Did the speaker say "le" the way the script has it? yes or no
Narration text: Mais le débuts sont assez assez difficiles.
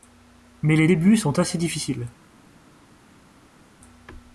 no